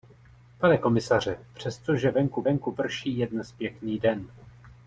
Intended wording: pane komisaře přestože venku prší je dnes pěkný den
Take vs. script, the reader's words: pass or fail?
fail